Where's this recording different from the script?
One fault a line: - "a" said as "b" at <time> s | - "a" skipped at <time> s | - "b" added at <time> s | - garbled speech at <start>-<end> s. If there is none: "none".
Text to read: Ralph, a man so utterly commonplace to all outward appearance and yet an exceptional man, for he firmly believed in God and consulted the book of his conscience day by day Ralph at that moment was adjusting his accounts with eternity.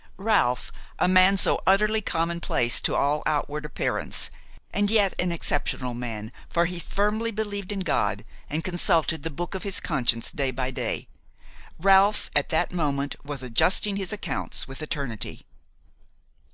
none